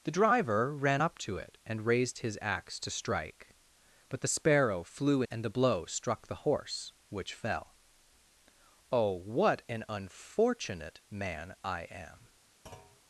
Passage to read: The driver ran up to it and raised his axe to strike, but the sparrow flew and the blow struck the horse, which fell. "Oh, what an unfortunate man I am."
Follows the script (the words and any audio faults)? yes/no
no